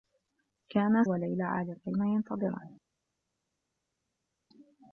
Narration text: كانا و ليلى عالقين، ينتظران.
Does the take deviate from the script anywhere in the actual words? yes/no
no